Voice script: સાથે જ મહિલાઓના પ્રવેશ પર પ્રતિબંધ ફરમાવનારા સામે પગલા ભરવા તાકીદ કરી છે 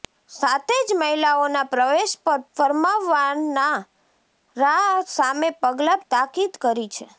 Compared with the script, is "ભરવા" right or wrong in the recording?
wrong